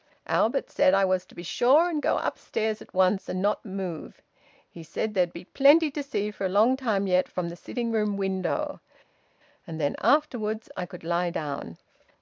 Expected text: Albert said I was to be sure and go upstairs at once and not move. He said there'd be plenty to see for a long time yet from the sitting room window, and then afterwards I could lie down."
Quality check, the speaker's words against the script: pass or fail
pass